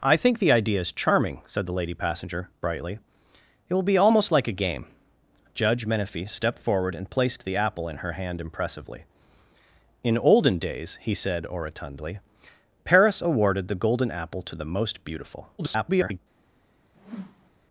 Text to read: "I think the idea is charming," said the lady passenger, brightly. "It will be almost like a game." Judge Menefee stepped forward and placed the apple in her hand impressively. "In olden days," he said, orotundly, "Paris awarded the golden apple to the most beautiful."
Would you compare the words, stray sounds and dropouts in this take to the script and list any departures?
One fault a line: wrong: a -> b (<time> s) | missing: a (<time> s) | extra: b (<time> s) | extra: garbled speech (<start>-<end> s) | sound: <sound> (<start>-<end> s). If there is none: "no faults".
extra: garbled speech (15.6-16.2 s)
sound: whoosh (16.9-17.5 s)